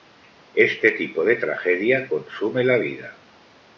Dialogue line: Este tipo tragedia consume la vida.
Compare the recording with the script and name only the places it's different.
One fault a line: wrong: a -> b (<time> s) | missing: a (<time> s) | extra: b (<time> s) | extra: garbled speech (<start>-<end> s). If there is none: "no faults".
extra: de (1.2 s)